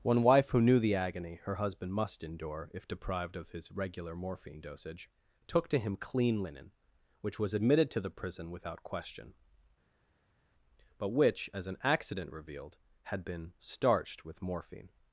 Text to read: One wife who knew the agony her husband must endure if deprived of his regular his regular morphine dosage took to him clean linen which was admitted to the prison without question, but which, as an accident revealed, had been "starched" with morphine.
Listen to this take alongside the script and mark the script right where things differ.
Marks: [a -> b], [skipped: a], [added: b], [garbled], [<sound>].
One wife who knew the agony her husband must endure if deprived of his regular [skipped: his regular] morphine dosage took to him clean linen which was admitted to the prison without question, but which, as an accident revealed, had been "starched" with morphine.